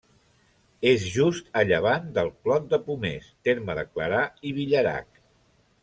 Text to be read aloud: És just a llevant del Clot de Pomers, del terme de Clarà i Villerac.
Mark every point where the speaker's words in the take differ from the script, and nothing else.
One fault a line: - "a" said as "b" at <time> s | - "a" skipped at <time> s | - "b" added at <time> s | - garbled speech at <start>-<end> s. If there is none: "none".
- "del" skipped at 3.3 s